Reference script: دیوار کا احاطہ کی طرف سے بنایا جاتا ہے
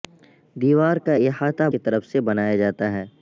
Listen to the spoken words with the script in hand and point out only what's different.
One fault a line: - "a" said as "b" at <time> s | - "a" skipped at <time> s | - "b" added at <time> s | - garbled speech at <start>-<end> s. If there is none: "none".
none